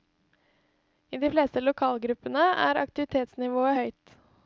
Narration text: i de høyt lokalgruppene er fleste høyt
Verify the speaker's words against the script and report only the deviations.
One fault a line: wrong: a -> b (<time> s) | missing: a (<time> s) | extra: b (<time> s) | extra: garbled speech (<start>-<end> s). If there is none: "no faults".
wrong: høyt -> fleste (1.3 s)
wrong: fleste -> aktivitetsnivået (2.8 s)